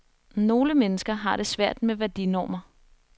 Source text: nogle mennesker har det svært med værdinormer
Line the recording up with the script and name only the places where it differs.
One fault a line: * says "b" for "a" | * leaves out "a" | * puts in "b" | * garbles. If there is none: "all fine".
all fine